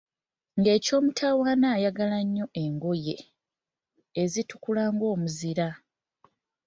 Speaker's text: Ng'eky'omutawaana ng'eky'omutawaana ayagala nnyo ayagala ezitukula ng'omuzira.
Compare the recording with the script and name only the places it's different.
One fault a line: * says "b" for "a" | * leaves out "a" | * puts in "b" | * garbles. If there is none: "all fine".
* leaves out "ng'eky'omutawaana"
* says "engoye" for "ayagala"